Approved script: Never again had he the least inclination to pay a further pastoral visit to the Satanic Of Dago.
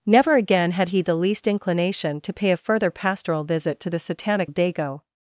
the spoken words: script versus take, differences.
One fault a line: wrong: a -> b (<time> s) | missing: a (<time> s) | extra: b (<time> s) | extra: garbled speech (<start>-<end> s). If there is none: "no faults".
no faults